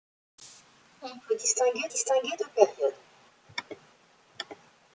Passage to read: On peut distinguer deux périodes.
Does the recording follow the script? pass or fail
fail